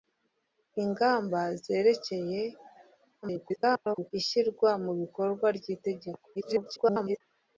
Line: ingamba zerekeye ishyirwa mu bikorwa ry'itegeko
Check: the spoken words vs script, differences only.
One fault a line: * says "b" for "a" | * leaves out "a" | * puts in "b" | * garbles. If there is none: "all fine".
* garbles
* garbles